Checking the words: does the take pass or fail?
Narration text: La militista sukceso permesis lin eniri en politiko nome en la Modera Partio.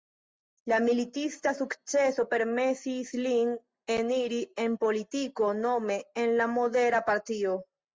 pass